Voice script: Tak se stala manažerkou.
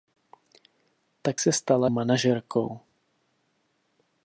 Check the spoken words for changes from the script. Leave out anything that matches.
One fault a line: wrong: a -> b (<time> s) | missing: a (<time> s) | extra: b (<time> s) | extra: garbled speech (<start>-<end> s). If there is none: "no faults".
no faults